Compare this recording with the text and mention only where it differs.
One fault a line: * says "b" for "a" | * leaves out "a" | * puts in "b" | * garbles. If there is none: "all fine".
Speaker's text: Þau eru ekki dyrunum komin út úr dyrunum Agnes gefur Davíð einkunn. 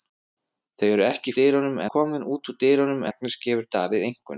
all fine